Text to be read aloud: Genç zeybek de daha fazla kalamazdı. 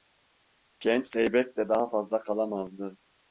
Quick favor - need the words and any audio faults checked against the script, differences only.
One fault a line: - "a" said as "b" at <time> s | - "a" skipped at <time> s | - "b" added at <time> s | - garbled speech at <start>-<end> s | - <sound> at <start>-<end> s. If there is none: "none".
none